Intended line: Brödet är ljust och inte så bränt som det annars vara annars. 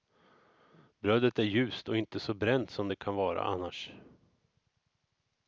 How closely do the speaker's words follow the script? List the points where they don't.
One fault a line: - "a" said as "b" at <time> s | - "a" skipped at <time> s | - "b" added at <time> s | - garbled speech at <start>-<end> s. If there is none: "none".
- "annars" said as "kan" at 3.0 s